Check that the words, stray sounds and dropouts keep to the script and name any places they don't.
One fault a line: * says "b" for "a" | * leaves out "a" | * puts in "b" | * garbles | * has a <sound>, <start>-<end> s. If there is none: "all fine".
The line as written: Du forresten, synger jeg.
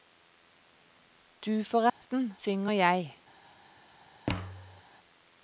* has a dropout, 1.9-2.0 s
* has a thud, 4.3-4.8 s